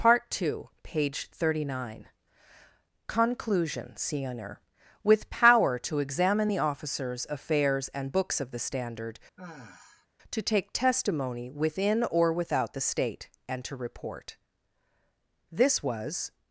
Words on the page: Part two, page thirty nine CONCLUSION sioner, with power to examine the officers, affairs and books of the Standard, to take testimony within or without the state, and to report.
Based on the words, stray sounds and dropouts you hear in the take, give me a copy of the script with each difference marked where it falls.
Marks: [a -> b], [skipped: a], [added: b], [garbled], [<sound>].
Part two, page thirty nine CONCLUSION sioner, with power to examine the officers, affairs and books of the Standard, [sigh] to take testimony within or without the state, and to report. [added: This was]